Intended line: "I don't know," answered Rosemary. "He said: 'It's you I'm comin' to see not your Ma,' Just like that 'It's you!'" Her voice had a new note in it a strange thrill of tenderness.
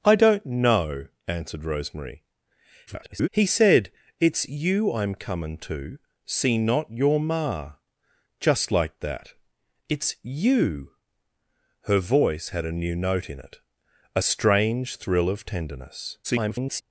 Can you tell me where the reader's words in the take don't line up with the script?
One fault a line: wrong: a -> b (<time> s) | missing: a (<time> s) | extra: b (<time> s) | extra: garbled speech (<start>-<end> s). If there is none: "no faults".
extra: garbled speech (2.9-3.3 s)
extra: garbled speech (16.2-16.8 s)